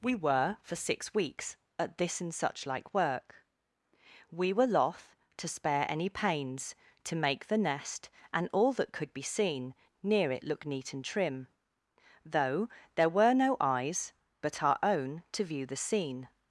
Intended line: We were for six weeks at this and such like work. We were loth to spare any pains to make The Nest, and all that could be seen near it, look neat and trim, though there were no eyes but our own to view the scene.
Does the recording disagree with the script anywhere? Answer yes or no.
no